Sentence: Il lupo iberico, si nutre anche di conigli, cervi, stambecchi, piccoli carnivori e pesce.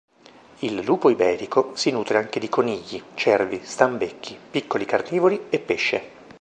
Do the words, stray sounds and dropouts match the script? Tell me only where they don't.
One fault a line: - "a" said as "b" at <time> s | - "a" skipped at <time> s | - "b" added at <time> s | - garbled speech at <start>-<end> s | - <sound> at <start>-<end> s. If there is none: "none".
none